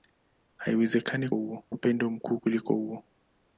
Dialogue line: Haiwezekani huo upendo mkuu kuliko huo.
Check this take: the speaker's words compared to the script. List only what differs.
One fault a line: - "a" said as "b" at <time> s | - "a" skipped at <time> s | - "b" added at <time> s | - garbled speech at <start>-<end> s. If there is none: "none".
none